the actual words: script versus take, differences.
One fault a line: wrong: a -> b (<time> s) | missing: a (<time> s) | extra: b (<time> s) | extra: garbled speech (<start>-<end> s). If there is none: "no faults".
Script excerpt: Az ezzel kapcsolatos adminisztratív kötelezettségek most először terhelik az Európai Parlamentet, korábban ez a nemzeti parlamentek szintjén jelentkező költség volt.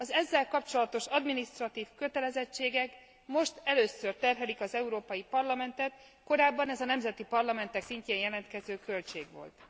no faults